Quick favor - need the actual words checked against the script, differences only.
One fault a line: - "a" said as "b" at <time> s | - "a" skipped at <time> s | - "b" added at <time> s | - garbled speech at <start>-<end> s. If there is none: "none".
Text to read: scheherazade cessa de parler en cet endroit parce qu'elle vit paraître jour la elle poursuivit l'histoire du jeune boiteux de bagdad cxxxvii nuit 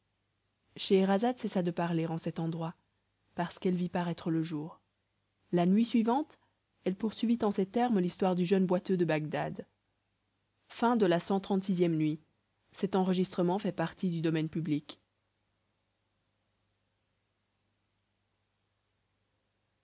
- "le" added at 4.3 s
- "nuit suivante" added at 5.7 s
- "en ces termes" added at 7.4 s